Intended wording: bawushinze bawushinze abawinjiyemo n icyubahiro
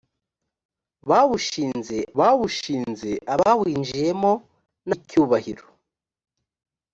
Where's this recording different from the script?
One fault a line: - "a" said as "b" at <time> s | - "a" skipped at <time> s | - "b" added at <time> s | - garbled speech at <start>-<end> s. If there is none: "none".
none